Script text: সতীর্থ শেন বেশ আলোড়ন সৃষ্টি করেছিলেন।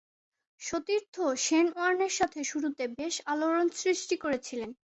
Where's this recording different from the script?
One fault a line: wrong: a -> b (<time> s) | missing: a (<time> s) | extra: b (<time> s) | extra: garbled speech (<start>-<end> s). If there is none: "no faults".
extra: ওয়ার্নের সাথে শুরুতে (1.7 s)